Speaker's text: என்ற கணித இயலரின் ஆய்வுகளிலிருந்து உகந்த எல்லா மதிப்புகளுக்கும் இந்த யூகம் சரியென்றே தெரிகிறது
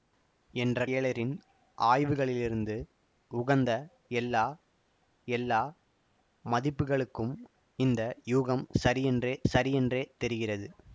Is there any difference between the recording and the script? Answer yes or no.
yes